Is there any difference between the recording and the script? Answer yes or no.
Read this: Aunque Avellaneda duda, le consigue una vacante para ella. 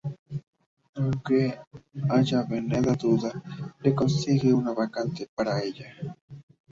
no